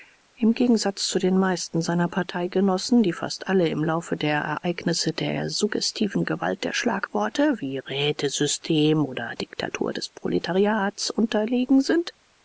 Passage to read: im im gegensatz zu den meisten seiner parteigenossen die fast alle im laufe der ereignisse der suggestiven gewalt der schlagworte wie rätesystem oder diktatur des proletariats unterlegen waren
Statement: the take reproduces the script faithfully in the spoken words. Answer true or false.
false